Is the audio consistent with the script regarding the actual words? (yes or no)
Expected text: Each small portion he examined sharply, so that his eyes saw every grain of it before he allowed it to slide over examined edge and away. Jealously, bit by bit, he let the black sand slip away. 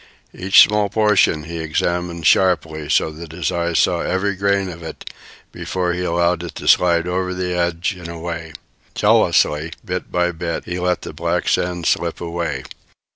no